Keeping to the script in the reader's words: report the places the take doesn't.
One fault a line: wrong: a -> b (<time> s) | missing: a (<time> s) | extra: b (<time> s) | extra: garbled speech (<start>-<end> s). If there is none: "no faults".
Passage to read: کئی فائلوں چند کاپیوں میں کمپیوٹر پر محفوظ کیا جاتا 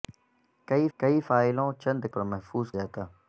extra: کئی (1.0 s)
missing: کاپیوں میں کمپیوٹر (2.0 s)
missing: کیا (2.7 s)